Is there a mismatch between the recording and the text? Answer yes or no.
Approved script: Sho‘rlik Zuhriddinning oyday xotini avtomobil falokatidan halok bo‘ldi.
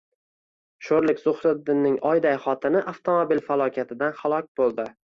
no